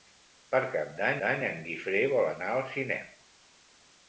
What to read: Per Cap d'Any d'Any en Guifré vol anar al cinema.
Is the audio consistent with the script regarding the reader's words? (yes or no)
yes